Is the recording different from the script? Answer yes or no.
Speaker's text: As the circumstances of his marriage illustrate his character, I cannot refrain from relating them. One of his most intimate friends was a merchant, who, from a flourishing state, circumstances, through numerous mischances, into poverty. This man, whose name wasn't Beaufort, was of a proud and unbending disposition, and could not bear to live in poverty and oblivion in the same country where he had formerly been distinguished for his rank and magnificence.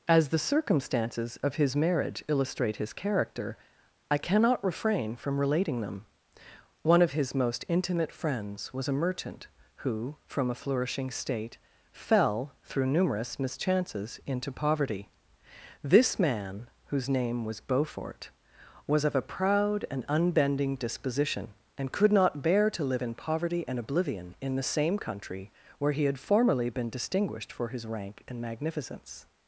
yes